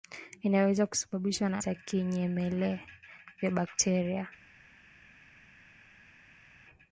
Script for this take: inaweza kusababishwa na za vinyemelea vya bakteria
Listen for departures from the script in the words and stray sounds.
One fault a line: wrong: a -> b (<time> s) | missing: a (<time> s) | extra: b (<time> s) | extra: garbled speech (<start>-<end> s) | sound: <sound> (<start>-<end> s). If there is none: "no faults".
no faults